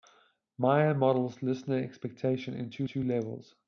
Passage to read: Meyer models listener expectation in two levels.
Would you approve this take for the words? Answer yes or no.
no